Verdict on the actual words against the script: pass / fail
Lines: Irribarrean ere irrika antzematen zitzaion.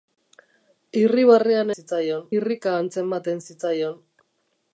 fail